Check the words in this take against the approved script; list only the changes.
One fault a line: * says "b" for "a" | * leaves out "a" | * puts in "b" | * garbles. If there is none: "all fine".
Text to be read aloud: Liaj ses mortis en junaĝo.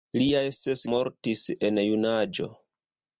all fine